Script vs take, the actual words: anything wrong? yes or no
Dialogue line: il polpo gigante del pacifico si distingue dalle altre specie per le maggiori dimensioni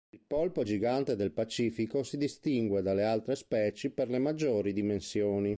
no